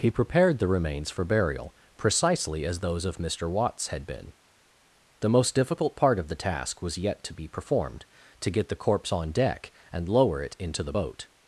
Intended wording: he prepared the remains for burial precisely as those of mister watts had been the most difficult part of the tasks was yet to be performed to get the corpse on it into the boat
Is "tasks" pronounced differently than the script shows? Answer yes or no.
yes